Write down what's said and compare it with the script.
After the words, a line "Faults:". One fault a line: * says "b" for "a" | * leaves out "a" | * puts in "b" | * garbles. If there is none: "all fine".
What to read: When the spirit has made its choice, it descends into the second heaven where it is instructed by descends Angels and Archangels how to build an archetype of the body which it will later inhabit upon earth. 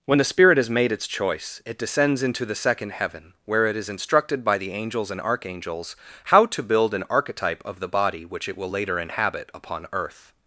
When the spirit has made its choice, it descends into the second heaven where it is instructed by the Angels and Archangels how to build an archetype of the body which it will later inhabit upon earth.
Faults:
* says "the" for "descends"